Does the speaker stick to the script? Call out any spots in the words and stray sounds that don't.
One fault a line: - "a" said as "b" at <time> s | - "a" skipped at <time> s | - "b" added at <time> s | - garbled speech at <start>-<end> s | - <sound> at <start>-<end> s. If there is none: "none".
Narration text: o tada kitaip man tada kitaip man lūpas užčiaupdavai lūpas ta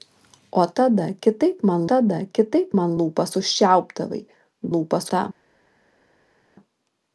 none